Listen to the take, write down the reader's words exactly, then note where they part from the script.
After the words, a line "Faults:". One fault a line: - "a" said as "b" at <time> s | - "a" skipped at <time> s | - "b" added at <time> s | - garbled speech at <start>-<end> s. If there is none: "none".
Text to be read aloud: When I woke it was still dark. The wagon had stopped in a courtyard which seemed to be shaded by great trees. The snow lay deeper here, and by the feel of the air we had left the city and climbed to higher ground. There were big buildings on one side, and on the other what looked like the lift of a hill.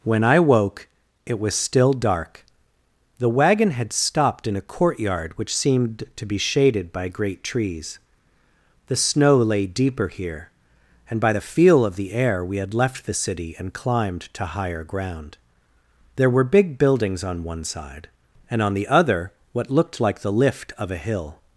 When I woke it was still dark. The wagon had stopped in a courtyard which seemed to be shaded by great trees. The snow lay deeper here, and by the feel of the air we had left the city and climbed to higher ground. There were big buildings on one side, and on the other what looked like the lift of a hill.
Faults:
none